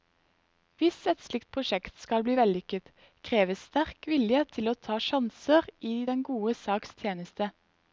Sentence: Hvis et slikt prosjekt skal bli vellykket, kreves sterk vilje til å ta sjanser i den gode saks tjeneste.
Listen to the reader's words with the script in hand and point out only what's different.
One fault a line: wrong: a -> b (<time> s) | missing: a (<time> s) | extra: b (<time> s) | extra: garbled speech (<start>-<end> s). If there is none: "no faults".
no faults